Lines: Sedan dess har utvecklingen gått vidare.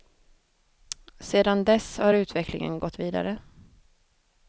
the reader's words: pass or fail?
pass